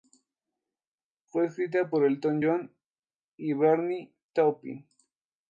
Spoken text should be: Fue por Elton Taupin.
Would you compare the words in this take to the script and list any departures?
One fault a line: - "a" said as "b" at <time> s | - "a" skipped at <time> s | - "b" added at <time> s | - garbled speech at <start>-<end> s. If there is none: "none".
- "escrita" added at 1.4 s
- "John y Bernie" added at 2.4 s